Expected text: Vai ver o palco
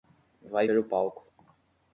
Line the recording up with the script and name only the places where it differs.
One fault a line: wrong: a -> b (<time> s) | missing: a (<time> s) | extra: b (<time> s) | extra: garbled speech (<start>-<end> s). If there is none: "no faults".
no faults